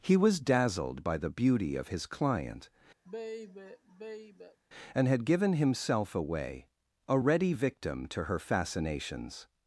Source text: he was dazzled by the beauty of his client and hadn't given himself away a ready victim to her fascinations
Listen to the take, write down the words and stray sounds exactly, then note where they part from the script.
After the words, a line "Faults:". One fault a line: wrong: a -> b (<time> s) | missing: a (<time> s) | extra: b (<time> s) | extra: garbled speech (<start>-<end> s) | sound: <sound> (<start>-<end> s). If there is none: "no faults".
he was dazzled by the beauty of his client and had given himself away a ready victim to her fascinations
Faults:
sound: sigh (3.0-4.6 s)
wrong: hadn't -> had (5.1 s)